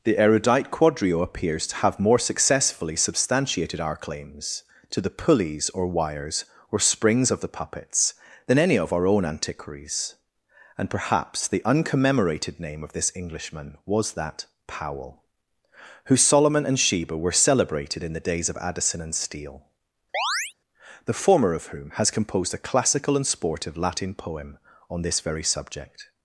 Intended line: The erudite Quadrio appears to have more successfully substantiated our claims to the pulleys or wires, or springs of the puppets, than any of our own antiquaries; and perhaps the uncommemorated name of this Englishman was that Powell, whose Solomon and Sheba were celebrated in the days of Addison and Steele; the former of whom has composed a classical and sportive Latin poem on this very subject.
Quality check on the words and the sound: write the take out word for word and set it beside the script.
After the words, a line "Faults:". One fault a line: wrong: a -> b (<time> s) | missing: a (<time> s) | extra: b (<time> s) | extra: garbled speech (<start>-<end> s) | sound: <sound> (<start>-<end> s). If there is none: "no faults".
The erudite Quadrio appears to have more successfully substantiated our claims to the pulleys or wires, or springs of the puppets, than any of our own antiquaries; and perhaps the uncommemorated name of this Englishman was that Powell, whose Solomon and Sheba were celebrated in the days of Addison and Steele; the former of whom has composed a classical and sportive Latin poem on this very subject.
Faults:
sound: chirp (20.1-20.5 s)